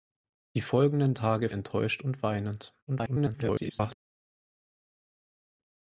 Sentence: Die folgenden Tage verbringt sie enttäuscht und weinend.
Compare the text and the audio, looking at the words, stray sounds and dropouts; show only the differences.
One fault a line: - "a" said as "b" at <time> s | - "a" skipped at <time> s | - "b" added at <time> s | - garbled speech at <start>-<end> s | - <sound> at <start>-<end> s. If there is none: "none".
- "verbringt sie" skipped at 1.5 s
- garbled speech at 2.9-3.9 s